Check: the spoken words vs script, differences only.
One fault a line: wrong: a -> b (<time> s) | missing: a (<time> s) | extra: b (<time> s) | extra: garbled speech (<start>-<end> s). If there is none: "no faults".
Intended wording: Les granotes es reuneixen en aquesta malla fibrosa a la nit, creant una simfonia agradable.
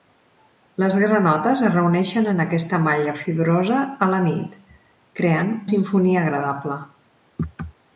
missing: una (5.5 s)